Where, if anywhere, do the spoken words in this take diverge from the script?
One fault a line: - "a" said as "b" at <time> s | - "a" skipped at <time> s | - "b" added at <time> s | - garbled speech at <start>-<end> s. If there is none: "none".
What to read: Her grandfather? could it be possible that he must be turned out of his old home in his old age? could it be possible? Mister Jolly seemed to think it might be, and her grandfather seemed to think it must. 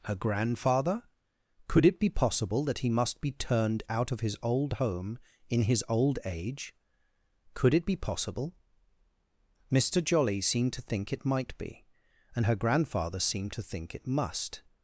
none